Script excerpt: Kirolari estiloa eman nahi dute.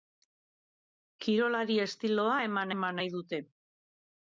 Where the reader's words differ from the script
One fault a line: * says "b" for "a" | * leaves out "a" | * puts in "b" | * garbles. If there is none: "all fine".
* puts in "eman"